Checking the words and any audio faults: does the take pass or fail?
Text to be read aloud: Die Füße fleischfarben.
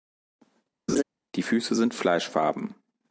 fail